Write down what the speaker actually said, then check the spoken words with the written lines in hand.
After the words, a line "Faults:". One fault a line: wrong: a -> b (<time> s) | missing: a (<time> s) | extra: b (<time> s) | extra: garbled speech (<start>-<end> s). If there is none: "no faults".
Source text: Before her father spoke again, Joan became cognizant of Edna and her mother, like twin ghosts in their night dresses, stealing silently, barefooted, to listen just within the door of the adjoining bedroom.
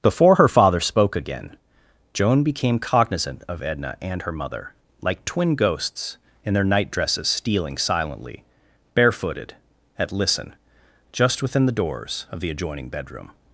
Before her father spoke again, Joan became cognizant of Edna and her mother, like twin ghosts in their night dresses, stealing silently, barefooted, at listen just within the doors of the adjoining bedroom.
Faults:
wrong: to -> at (10.0 s)
wrong: door -> doors (11.7 s)